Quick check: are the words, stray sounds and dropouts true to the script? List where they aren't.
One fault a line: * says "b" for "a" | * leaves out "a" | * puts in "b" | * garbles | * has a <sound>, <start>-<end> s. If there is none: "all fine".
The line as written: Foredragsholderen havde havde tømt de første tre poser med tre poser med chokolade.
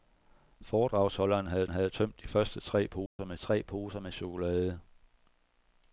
* has a dropout, 3.1-3.2 s